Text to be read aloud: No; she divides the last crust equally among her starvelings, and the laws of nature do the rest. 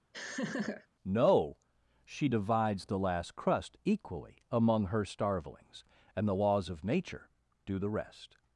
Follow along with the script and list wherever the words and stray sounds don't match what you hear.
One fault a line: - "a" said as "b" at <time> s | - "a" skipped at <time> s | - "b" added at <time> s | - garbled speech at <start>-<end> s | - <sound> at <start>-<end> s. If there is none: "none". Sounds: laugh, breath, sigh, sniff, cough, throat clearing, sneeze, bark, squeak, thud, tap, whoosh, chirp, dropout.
- laugh at 0.1-0.9 s